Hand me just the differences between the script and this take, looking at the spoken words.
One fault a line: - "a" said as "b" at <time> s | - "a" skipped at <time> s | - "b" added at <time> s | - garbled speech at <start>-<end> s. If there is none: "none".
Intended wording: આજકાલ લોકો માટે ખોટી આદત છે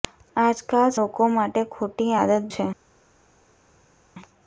none